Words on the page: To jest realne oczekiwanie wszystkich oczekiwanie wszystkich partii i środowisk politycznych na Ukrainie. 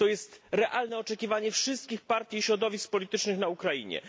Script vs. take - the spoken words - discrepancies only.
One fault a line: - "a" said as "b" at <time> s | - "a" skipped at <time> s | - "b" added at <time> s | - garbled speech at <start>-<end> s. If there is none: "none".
- "oczekiwanie wszystkich" skipped at 2.0 s